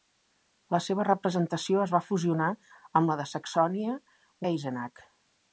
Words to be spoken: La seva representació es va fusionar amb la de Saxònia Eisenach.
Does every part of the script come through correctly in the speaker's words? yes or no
yes